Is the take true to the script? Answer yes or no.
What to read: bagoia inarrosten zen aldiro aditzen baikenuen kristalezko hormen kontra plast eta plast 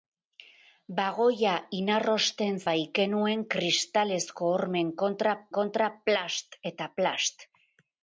no